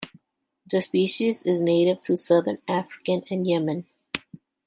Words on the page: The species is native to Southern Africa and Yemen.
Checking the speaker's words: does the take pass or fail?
pass